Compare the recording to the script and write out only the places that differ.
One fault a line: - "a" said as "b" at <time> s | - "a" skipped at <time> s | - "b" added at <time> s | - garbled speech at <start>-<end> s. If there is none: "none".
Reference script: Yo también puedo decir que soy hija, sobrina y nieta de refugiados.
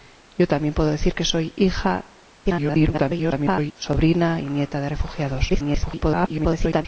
- garbled speech at 2.4-3.7 s
- garbled speech at 5.5-6.9 s